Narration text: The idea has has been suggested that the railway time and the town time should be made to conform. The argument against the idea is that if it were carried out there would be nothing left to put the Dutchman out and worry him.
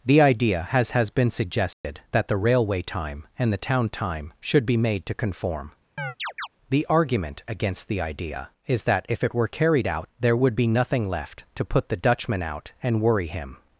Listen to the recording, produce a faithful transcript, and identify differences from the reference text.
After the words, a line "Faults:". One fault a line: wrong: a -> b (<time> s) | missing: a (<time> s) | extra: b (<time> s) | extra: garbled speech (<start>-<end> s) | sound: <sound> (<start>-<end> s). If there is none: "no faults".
The idea has has been suggested that the railway time and the town time should be made to conform. The argument against the idea is that if it were carried out there would be nothing left to put the Dutchman out and worry him.
Faults:
sound: dropout (1.7-1.8 s)
sound: chirp (6.0-6.5 s)